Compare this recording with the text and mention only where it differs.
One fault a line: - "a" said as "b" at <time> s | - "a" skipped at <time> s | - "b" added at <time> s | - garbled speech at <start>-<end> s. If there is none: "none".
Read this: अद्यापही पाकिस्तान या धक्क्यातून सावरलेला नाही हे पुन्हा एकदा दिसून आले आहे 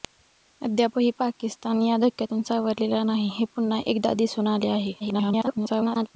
- garbled speech at 5.0-6.1 s